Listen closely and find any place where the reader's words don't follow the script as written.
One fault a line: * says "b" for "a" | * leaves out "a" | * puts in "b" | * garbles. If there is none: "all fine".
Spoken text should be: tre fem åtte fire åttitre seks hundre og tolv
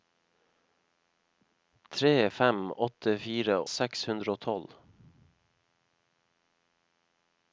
* leaves out "åttitre"